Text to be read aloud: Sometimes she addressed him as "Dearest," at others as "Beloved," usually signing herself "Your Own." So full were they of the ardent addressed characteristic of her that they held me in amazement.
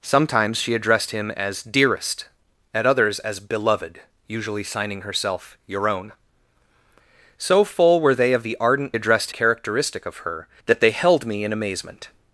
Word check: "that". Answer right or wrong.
right